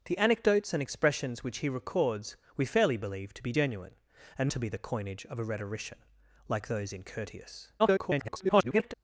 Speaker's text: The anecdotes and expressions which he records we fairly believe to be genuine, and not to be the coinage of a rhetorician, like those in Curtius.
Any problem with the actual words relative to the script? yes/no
yes